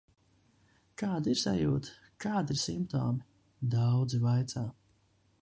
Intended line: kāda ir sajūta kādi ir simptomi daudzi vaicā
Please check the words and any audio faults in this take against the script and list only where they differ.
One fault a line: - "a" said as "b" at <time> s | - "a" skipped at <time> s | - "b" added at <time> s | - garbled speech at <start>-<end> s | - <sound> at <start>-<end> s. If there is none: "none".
none